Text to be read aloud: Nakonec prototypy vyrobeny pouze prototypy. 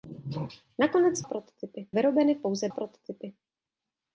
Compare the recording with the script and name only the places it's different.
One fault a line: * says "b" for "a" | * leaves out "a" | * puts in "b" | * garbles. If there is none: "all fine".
all fine